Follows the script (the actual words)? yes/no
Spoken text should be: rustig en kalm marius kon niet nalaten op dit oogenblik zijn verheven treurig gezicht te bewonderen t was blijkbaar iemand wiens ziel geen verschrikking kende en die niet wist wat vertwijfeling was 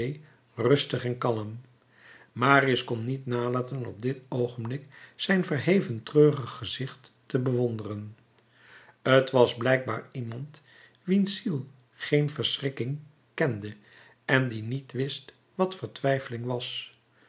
yes